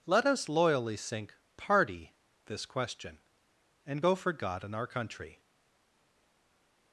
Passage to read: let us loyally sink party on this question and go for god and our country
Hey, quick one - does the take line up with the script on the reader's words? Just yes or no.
no